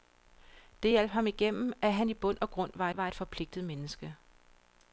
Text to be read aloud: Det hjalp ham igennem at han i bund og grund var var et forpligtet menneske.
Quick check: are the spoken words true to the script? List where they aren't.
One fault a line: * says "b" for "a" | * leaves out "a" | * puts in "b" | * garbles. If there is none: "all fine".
all fine